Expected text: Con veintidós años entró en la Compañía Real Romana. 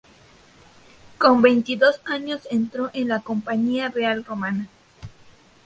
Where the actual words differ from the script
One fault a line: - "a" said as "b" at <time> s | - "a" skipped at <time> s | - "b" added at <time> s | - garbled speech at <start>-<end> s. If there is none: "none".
none